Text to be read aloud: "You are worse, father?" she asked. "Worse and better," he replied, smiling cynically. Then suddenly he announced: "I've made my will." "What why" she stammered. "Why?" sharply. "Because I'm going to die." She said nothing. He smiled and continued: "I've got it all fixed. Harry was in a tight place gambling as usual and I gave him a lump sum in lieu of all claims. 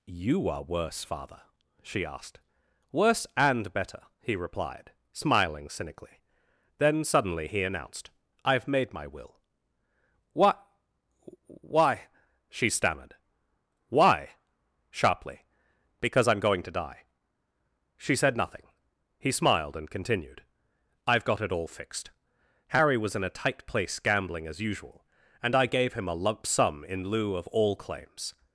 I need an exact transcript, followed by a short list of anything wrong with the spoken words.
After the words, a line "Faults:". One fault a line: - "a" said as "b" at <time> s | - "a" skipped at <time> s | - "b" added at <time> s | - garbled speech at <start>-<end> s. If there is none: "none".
"You are worse, father?" she asked. "Worse and better," he replied, smiling cynically. Then suddenly he announced: "I've made my will." "What why" she stammered. "Why?" sharply. "Because I'm going to die." She said nothing. He smiled and continued: "I've got it all fixed. Harry was in a tight place gambling as usual and I gave him a lump sum in lieu of all claims.
Faults:
none